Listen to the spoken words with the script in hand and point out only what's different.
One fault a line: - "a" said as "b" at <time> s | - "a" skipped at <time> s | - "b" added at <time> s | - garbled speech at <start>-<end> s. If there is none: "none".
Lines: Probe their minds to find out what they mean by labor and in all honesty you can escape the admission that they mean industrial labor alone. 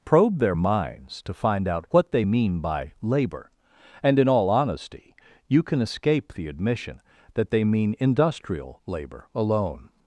none